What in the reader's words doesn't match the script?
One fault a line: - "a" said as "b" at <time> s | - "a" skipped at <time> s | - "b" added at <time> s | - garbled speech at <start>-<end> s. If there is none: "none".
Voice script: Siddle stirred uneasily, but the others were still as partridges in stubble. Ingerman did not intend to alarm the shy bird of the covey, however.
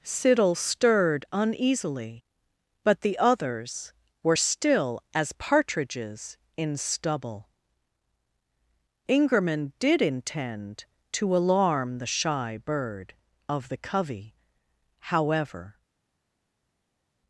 - "not" skipped at 10.0 s